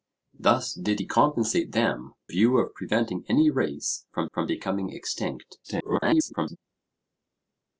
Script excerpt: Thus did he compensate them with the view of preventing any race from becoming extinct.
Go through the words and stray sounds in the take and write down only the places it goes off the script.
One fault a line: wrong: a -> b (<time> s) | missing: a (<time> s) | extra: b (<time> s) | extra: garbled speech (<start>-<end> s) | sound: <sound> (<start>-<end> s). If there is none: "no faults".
missing: with the (2.1 s)
extra: from (4.3 s)
extra: garbled speech (5.6-6.6 s)